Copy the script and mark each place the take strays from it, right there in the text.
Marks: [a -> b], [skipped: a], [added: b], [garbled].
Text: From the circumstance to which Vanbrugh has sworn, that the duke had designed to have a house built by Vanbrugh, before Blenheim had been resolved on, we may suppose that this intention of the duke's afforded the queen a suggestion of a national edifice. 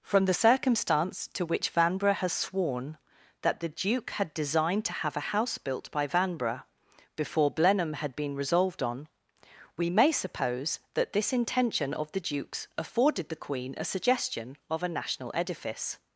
From the circumstance to which Vanbrugh has sworn, that the duke had designed to have a house built by Vanbrugh, before Blenheim had been resolved on, we may suppose that this intention of the duke's afforded the queen a suggestion of a national edifice.